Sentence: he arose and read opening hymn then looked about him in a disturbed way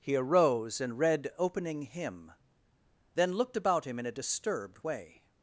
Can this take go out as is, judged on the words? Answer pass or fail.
pass